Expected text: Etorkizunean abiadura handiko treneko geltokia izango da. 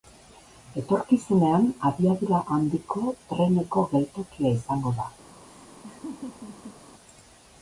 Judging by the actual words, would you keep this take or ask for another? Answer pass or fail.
pass